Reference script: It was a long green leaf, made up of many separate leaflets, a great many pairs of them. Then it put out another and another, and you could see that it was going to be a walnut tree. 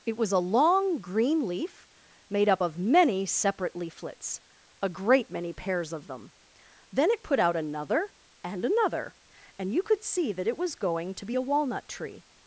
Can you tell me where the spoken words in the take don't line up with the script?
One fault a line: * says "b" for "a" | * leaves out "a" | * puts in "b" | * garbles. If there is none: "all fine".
all fine